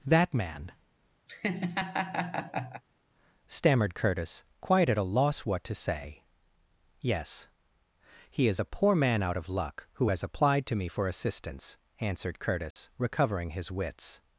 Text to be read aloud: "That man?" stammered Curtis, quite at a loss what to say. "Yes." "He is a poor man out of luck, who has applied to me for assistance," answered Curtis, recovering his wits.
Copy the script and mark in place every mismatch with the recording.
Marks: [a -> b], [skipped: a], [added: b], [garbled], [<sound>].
"That man?" [laugh] stammered Curtis, quite at a loss what to say. "Yes." "He is a poor man out of luck, who has applied to me for assistance," answered Curtis, [dropout] recovering his wits.